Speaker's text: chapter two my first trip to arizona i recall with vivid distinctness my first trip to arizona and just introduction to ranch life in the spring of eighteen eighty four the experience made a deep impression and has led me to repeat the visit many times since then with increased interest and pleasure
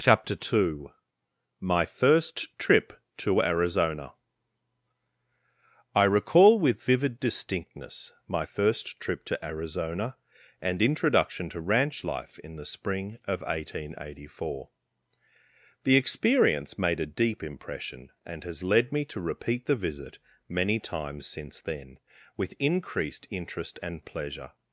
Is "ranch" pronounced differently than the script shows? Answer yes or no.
no